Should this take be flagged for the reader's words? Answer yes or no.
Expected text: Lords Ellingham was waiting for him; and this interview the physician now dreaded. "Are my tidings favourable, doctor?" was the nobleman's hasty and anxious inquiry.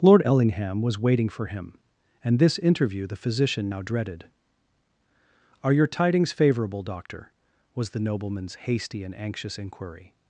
yes